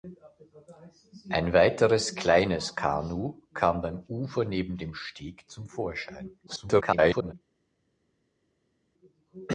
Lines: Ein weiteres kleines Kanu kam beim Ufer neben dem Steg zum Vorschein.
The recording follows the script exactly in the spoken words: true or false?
false